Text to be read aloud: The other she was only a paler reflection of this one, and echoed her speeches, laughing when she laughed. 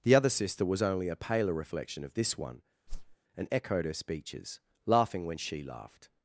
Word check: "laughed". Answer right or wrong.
right